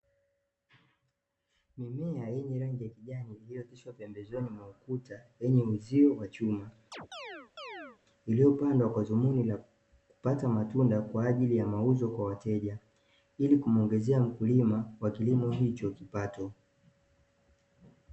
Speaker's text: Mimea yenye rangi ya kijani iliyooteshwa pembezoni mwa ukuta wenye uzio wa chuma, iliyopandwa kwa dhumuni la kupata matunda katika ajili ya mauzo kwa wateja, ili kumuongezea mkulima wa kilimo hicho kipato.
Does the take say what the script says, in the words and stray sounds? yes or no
no